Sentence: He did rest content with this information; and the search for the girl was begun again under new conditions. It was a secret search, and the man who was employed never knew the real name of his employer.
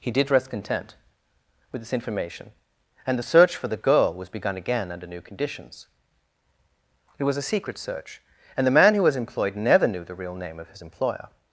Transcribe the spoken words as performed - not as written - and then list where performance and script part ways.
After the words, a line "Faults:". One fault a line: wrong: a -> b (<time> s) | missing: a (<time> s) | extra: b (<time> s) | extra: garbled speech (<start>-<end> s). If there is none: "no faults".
He did rest content with this information; and the search for the girl was begun again under new conditions. It was a secret search, and the man who was employed never knew the real name of his employer.
Faults:
no faults